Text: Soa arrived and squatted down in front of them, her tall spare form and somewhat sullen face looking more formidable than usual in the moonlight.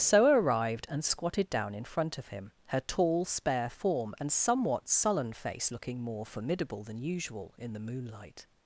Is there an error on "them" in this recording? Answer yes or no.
yes